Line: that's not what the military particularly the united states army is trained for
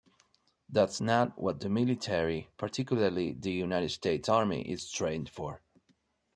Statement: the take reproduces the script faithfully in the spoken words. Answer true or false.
true